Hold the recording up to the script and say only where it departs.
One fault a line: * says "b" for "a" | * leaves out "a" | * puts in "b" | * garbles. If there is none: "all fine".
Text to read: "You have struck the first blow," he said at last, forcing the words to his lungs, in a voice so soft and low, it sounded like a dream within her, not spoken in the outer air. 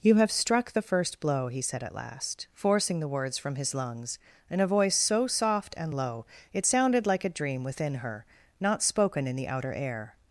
* says "from" for "to"